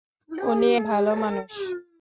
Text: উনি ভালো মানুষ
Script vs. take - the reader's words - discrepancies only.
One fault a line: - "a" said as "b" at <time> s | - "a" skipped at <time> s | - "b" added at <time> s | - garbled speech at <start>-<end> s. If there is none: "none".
none